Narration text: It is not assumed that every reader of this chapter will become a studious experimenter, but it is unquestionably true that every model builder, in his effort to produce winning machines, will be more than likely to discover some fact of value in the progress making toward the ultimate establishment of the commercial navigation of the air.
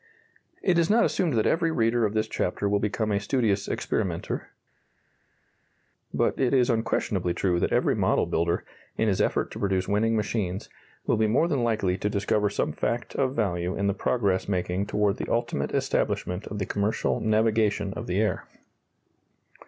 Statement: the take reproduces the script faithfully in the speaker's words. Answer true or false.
true